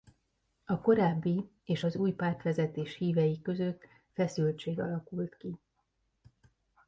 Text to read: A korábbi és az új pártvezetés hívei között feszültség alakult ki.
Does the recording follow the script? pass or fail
pass